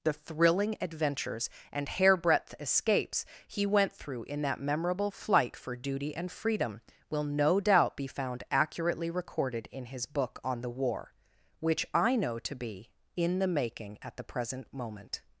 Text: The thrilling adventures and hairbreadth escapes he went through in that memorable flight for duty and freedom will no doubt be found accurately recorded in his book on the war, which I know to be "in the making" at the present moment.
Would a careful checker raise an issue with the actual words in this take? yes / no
no